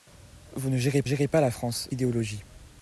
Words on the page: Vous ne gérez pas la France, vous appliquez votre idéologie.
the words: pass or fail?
fail